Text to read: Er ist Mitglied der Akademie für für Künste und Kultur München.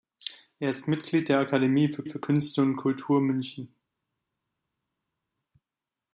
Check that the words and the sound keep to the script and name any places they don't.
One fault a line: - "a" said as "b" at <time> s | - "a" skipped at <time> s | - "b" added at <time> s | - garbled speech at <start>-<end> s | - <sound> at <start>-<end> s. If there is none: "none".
none